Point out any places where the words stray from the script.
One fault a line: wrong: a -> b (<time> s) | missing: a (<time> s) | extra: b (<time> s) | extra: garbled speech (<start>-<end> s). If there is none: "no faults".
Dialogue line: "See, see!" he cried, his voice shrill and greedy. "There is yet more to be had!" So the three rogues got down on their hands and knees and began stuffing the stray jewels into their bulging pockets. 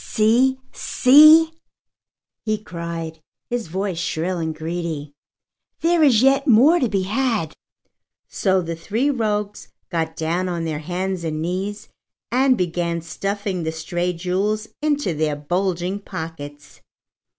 no faults